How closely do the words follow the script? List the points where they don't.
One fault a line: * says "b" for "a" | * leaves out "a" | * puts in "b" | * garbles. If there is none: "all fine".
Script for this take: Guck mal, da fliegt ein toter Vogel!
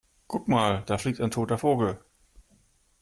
all fine